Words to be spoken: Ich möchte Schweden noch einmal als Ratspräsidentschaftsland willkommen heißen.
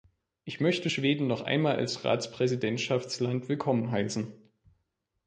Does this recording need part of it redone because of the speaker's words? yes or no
no